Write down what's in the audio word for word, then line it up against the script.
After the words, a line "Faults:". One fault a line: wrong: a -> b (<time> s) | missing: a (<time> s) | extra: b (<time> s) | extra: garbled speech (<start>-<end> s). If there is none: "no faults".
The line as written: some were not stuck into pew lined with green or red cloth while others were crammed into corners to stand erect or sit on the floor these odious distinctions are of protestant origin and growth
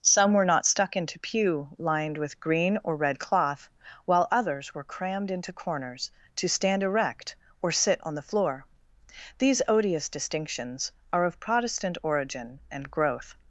some were not stuck into pew lined with green or red cloth while others were crammed into corners to stand erect or sit on the floor these odious distinctions are of protestant origin and growth
Faults:
no faults